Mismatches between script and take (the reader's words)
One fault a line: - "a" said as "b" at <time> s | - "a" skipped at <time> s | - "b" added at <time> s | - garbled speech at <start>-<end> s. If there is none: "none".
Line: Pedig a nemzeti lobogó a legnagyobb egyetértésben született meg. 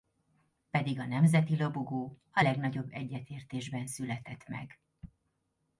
none